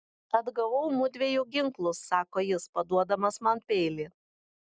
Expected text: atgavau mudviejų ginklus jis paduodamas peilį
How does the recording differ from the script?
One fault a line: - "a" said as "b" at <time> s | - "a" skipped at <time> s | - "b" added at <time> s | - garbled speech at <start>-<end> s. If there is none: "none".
- "sako" added at 2.1 s
- "man" added at 3.5 s